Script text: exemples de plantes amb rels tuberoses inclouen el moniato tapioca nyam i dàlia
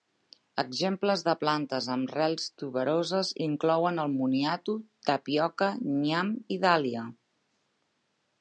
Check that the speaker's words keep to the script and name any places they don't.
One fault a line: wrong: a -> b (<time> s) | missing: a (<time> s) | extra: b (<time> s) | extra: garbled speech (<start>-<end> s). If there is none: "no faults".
no faults